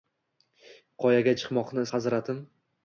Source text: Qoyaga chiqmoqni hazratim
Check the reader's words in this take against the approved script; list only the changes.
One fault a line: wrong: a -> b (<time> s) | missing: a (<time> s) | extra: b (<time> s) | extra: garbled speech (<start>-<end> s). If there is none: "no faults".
no faults